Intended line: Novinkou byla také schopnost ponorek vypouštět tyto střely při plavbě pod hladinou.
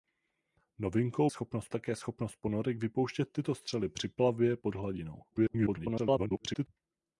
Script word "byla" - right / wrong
wrong